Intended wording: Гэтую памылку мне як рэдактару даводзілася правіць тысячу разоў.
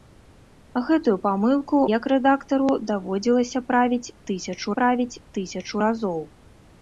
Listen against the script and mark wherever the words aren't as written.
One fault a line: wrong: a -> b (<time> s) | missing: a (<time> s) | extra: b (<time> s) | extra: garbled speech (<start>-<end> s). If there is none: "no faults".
missing: мне (1.8 s)
extra: правіць тысячу (4.8 s)